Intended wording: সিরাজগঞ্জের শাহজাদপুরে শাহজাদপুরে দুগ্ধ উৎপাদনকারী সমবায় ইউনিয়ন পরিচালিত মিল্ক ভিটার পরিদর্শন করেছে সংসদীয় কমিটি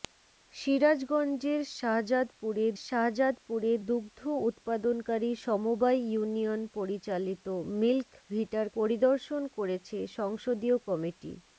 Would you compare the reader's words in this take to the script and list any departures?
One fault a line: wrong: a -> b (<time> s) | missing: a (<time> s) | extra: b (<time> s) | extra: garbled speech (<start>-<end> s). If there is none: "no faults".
no faults